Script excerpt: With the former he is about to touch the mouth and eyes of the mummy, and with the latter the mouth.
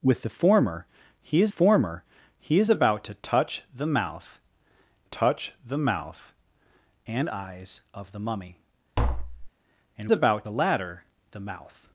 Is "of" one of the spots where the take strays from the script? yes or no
no